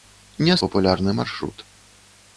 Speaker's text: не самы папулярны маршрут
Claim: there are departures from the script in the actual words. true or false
true